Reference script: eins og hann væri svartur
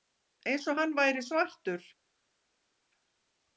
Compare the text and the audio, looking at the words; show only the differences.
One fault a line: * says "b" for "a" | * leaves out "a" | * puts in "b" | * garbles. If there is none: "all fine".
all fine